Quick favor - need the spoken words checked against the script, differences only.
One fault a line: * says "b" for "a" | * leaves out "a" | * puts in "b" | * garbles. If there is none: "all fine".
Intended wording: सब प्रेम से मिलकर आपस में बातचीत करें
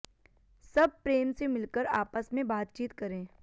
all fine